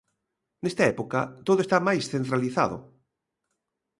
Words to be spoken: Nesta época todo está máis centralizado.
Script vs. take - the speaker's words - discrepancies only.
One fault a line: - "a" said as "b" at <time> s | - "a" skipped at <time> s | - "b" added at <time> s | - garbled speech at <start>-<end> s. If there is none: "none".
none